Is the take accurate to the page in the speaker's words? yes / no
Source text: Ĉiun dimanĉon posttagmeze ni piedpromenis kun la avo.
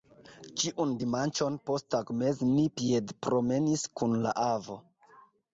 yes